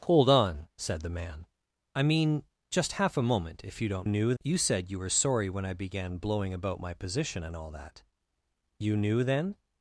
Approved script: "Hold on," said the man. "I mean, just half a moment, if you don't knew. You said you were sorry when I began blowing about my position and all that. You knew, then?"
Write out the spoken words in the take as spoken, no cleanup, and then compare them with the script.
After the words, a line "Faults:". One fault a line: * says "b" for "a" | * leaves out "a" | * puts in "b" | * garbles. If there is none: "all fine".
"Hold on," said the man. "I mean, just half a moment, if you don't knew. You said you were sorry when I began blowing about my position and all that. You knew, then?"
Faults:
all fine